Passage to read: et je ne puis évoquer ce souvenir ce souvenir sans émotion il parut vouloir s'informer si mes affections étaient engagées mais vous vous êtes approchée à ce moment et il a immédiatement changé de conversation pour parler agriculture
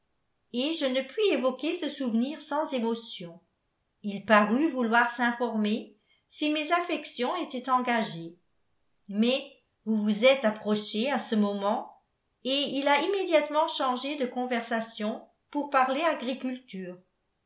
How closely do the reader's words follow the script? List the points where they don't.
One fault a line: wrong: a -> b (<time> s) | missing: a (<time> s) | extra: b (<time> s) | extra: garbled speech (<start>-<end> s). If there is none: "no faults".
missing: ce souvenir (2.4 s)